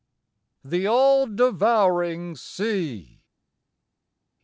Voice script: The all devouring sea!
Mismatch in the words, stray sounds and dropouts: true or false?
false